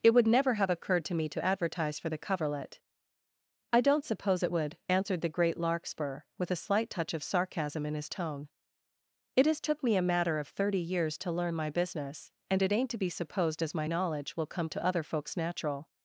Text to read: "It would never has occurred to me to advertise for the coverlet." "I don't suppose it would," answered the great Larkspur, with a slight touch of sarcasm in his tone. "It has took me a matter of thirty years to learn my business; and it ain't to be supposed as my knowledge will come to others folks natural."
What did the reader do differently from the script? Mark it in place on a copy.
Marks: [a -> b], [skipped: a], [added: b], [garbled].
"It would never [has -> have] occurred to me to advertise for the coverlet." "I don't suppose it would," answered the great Larkspur, with a slight touch of sarcasm in his tone. "It has took me a matter of thirty years to learn my business; and it ain't to be supposed as my knowledge will come to [others -> other] folks natural."